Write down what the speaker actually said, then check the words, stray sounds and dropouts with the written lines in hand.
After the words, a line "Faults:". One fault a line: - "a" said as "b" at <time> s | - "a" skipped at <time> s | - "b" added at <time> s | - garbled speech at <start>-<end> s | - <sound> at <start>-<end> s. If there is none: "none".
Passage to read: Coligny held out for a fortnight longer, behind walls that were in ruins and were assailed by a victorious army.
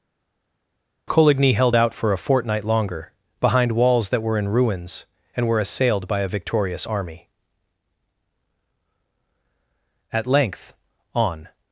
Coligny held out for a fortnight longer, behind walls that were in ruins and were assailed by a victorious army. At length, on
Faults:
- "At length on" added at 10.1 s